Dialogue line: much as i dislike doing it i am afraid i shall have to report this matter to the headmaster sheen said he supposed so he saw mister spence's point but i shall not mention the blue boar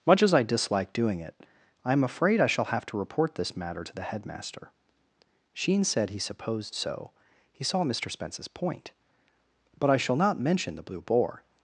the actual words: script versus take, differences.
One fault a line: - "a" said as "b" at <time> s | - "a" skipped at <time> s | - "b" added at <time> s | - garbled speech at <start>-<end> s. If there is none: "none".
none